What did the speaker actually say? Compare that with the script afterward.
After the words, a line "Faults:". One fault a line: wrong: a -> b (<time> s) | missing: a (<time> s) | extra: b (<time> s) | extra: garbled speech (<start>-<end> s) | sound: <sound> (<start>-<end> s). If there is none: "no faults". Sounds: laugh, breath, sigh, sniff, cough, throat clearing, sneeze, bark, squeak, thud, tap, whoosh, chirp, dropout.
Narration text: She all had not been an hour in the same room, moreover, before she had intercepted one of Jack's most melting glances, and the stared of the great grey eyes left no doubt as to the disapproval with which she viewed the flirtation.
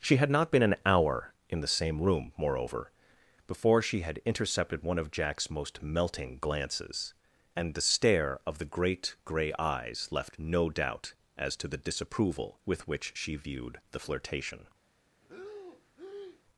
She had not been an hour in the same room, moreover, before she had intercepted one of Jack's most melting glances, and the stare of the great grey eyes left no doubt as to the disapproval with which she viewed the flirtation.
Faults:
missing: all (0.2 s)
wrong: stared -> stare (7.8 s)
sound: breath (15.2-16.4 s)